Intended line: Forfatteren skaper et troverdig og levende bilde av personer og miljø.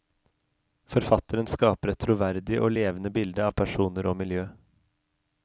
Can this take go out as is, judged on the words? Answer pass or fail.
pass